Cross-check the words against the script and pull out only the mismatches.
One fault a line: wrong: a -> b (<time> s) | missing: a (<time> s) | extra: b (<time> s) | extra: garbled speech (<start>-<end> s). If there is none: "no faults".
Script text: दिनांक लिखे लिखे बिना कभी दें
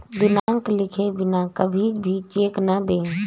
missing: लिखे (1.1 s)
extra: भी चेक न (2.0 s)